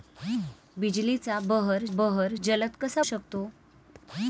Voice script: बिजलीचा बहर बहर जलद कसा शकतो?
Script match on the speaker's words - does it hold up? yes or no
yes